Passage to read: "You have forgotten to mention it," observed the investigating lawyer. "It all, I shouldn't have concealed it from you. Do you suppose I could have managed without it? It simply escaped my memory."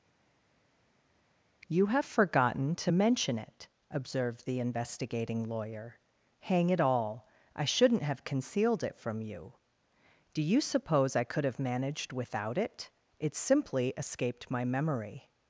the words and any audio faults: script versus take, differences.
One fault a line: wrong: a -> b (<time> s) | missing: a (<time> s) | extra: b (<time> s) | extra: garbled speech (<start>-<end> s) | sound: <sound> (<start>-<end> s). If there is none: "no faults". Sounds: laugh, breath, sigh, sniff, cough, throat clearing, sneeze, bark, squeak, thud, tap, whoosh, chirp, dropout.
extra: Hang (6.4 s)